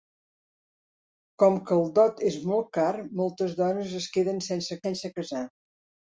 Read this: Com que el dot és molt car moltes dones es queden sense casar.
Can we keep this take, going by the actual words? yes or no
no